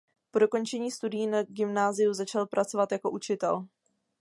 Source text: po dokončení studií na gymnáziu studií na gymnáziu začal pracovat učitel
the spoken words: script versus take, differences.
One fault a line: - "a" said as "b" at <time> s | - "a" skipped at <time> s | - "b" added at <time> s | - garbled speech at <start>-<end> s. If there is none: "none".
- "studií na gymnáziu" skipped at 2.1 s
- "jako" added at 2.9 s